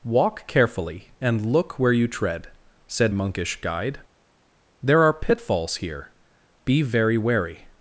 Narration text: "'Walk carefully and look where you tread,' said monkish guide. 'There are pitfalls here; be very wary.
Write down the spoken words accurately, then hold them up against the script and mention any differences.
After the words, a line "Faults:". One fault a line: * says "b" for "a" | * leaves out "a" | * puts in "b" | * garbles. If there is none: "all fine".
"'Walk carefully and look where you tread,' said monkish guide. 'There are pitfalls here; be very wary.
Faults:
all fine